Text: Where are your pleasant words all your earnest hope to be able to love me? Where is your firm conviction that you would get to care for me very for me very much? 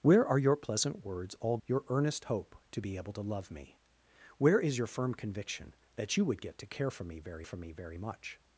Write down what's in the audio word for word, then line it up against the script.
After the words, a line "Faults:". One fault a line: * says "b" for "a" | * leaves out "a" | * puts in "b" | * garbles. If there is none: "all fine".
Where are your pleasant words all your earnest hope to be able to love me? Where is your firm conviction that you would get to care for me very for me very much?
Faults:
all fine